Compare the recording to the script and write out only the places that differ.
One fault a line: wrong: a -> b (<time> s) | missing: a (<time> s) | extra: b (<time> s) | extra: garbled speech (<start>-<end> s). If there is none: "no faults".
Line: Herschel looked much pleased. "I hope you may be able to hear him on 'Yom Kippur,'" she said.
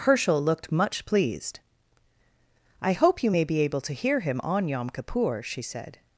no faults